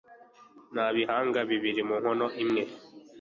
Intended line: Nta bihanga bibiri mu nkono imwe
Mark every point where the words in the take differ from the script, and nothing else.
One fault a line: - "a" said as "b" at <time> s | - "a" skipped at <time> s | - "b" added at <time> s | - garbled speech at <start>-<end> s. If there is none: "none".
none